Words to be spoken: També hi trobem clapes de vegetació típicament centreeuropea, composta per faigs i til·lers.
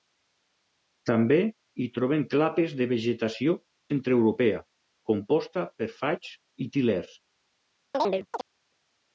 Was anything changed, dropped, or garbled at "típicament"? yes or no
yes